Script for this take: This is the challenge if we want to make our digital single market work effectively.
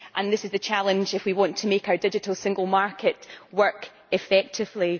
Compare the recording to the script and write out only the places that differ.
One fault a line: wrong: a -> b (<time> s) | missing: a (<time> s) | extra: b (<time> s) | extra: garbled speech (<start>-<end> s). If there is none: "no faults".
no faults